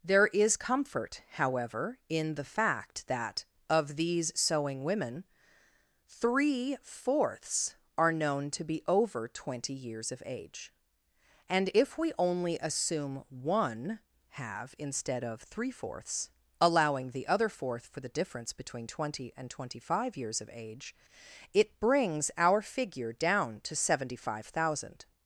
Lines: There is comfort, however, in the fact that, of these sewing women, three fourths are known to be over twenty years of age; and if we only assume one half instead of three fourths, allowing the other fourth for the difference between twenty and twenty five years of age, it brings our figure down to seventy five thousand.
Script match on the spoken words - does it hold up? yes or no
no